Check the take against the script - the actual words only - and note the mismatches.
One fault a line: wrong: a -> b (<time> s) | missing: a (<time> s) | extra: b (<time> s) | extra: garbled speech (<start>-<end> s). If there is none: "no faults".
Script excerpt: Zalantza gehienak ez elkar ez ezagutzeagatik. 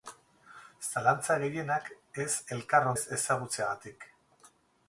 no faults